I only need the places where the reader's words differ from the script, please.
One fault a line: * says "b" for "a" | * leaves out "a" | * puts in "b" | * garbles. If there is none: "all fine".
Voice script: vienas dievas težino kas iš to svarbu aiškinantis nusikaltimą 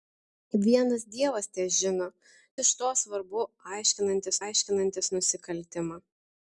* leaves out "kas"
* puts in "aiškinantis"